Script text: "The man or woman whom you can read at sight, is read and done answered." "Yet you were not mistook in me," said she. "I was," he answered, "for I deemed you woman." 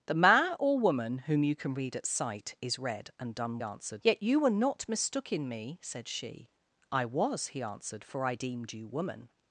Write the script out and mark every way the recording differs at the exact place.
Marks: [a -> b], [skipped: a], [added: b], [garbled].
"The man or woman whom you can read at sight, is read and done answered." "Yet you were not mistook in me," said she. "I was," he answered, "for I deemed you woman."